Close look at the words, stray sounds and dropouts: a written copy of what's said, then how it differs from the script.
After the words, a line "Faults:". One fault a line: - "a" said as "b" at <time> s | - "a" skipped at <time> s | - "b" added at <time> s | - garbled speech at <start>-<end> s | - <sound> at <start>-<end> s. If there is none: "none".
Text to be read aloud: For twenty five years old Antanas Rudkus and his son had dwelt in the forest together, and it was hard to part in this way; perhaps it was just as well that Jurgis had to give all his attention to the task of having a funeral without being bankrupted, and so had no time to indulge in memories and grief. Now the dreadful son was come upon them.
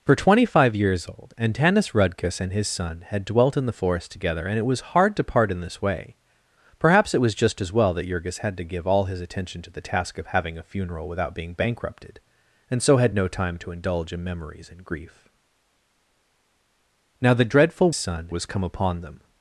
For twenty five years old Antanas Rudkus and his son had dwelt in the forest together, and it was hard to part in this way; perhaps it was just as well that Jurgis had to give all his attention to the task of having a funeral without being bankrupted, and so had no time to indulge in memories and grief. Now the dreadful son was come upon them.
Faults:
none